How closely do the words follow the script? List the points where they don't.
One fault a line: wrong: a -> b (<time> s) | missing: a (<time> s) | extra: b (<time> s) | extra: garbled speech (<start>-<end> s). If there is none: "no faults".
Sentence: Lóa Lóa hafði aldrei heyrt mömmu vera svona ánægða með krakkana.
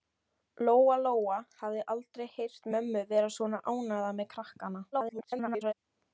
extra: garbled speech (4.9-5.7 s)